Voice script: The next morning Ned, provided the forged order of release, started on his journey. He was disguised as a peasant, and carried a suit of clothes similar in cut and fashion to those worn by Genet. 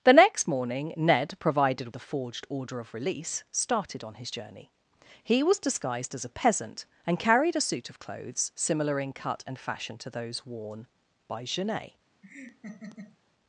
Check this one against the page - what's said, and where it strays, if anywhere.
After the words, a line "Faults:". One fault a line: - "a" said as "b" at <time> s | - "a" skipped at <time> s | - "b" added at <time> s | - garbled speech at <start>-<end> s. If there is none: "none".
The next morning Ned, provided the forged order of release, started on his journey. He was disguised as a peasant, and carried a suit of clothes similar in cut and fashion to those worn by Genet.
Faults:
none